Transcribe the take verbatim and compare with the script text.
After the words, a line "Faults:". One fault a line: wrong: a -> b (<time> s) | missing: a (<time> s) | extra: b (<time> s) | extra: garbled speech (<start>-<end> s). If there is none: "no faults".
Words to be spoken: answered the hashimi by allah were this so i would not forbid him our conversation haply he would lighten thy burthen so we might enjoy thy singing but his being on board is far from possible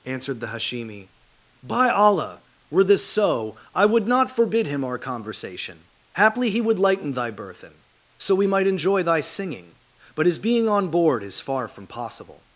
answered the hashimi by allah were this so i would not forbid him our conversation haply he would lighten thy burthen so we might enjoy thy singing but his being on board is far from possible
Faults:
no faults